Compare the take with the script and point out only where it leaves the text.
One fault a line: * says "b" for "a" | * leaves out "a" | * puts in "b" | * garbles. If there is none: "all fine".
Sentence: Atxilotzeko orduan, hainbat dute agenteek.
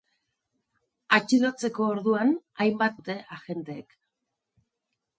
all fine